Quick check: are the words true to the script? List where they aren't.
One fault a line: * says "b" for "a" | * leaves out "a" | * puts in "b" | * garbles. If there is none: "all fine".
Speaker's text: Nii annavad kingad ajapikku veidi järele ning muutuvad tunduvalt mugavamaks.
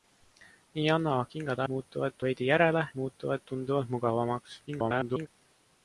* says "muutuvad" for "ajapikku"
* leaves out "ning"
* garbles